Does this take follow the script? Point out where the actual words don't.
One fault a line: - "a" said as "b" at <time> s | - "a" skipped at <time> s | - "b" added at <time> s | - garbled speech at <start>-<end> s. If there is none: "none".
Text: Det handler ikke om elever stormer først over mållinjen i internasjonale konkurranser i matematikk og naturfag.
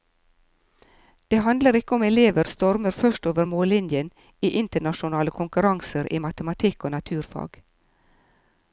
none